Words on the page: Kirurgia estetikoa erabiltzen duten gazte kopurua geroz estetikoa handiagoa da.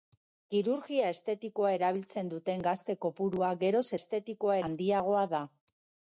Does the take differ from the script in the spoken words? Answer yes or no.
no